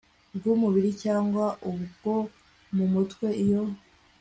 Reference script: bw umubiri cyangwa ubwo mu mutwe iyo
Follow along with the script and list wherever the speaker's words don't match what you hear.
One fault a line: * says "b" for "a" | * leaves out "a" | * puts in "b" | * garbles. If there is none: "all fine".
all fine